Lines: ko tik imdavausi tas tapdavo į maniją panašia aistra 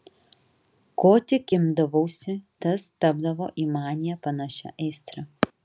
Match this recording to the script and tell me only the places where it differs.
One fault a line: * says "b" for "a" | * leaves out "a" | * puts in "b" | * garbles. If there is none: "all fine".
all fine